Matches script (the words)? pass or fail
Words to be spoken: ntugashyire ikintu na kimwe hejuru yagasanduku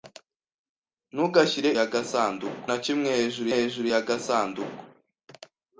fail